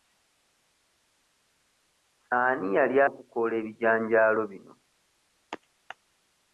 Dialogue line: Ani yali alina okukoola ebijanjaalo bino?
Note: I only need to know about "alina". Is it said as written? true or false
false